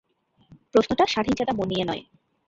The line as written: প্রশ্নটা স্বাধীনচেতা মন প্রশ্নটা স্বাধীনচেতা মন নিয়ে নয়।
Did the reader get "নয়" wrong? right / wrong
right